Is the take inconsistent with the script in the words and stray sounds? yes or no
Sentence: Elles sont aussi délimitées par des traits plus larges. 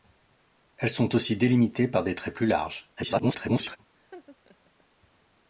yes